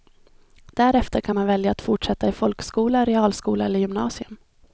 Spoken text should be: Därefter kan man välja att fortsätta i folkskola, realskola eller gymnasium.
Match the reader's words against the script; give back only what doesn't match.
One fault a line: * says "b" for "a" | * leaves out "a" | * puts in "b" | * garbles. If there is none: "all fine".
all fine